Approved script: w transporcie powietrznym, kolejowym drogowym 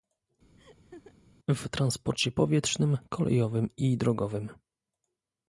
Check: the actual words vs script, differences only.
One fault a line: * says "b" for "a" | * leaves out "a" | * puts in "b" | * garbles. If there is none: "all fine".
* puts in "i"